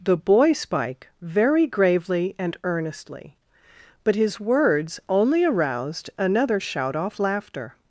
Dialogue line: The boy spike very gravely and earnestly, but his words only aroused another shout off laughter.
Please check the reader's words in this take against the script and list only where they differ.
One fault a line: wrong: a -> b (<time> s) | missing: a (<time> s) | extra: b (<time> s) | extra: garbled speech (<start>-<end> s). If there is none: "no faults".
no faults